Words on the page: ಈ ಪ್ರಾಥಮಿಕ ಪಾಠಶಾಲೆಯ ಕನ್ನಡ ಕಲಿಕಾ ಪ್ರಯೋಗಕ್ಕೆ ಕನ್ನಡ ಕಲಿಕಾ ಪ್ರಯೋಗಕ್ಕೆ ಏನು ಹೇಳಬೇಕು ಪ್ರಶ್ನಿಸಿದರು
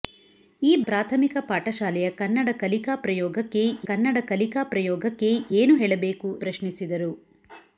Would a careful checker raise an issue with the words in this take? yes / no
no